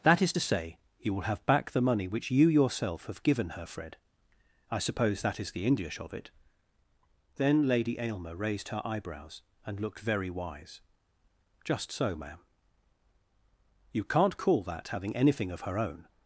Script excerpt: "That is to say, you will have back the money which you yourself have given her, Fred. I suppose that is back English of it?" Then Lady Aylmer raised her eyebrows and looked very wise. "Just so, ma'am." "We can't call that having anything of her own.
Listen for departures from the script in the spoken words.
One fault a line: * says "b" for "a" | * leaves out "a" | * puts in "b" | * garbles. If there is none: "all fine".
* says "the" for "back"
* says "You" for "We"